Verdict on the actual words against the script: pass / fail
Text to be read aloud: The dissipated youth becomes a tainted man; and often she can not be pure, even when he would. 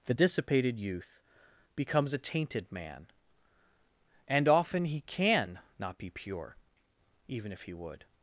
fail